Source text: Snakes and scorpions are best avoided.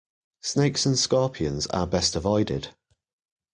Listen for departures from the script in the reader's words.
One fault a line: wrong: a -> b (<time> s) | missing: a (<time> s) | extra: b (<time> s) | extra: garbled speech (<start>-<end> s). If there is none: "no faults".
no faults